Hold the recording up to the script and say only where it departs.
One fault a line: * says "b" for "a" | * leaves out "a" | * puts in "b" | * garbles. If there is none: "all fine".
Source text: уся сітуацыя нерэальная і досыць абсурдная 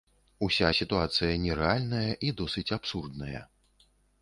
all fine